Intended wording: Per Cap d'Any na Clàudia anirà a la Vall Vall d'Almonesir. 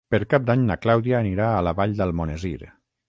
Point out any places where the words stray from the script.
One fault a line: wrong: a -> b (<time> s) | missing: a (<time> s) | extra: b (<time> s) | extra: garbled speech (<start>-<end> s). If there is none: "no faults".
missing: Vall (1.9 s)